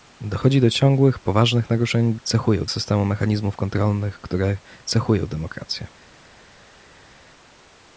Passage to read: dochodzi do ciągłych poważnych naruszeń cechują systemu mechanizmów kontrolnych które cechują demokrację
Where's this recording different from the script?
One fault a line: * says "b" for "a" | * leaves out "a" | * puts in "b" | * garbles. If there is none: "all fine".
all fine